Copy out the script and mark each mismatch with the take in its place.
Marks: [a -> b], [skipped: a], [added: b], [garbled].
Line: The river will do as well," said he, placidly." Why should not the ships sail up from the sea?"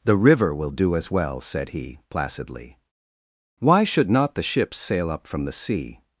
The river will do as well," said he, placidly." Why should not the ships sail up from the sea?"